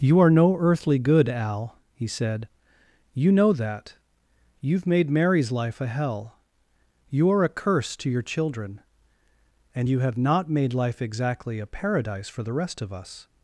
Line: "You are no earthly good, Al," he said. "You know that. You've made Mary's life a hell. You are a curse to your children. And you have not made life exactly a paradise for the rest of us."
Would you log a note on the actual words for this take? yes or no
no